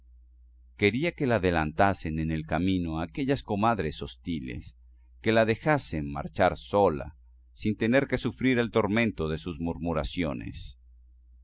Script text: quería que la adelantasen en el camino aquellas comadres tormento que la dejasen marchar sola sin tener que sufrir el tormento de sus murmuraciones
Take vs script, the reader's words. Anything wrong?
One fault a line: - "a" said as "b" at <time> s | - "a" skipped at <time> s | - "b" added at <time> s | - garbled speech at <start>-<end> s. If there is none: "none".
- "tormento" said as "hostiles" at 4.0 s